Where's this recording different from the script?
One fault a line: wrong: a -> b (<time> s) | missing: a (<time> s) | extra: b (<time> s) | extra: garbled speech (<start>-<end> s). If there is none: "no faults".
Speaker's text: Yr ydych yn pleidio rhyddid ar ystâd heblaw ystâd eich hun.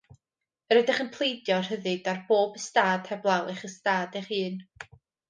extra: bob (2.3 s)
extra: eich (3.5 s)